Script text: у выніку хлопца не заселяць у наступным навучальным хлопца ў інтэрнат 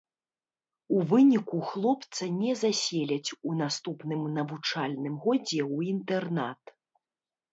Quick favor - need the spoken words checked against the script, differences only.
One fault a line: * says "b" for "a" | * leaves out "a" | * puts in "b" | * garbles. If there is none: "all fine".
* says "годзе" for "хлопца"